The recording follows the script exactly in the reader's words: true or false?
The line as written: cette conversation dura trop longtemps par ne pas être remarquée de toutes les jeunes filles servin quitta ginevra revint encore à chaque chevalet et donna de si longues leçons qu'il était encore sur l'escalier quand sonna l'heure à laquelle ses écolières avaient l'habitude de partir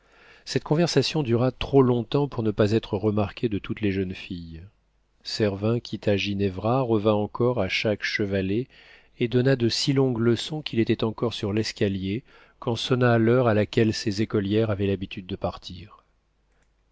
false